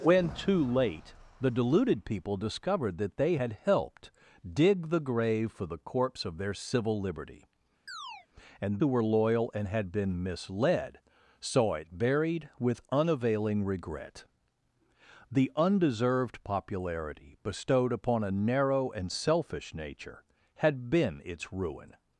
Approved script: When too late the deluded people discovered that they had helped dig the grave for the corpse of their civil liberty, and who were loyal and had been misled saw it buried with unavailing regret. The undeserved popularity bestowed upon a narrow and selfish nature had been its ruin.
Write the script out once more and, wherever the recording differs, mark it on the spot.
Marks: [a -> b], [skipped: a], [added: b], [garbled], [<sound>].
When too late the deluded people discovered that they had helped dig the grave for the corpse of their civil liberty, [chirp] and who were loyal and had been misled saw it buried with unavailing regret. The undeserved popularity bestowed upon a narrow and selfish nature had been its ruin.